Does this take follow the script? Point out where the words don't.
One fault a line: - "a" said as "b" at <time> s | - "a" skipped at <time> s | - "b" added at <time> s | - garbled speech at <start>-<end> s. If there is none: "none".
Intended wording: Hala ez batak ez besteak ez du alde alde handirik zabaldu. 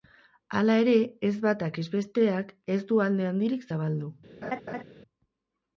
- "ere" added at 0.8 s
- "alde" skipped at 3.3 s